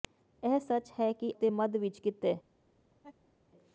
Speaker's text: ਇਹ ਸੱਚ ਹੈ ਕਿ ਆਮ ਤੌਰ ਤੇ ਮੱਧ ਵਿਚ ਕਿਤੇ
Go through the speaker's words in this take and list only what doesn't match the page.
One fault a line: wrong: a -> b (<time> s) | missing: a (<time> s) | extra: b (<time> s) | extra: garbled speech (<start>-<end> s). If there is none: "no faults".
missing: ਆਮ ਤੌਰ (1.3 s)